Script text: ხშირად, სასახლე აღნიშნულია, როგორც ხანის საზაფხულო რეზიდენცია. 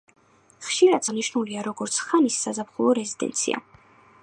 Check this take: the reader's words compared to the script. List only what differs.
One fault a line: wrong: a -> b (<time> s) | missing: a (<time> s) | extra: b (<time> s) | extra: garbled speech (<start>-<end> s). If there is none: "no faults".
missing: სასახლე (1.0 s)